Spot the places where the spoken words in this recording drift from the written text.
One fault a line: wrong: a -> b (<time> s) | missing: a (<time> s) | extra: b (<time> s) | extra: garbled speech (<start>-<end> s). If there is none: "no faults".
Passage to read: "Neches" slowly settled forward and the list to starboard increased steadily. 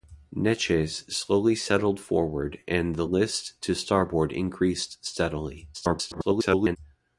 extra: garbled speech (5.7-6.8 s)